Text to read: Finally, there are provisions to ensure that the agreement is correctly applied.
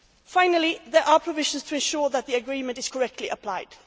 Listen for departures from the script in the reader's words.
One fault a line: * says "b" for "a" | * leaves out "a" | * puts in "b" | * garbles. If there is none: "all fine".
all fine